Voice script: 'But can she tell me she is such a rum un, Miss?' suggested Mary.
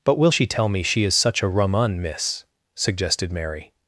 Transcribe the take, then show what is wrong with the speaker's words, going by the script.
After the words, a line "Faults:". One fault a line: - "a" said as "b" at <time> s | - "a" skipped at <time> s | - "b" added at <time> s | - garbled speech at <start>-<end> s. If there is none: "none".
'But will she tell me she is such a rum un, Miss?' suggested Mary.
Faults:
- "can" said as "will" at 0.2 s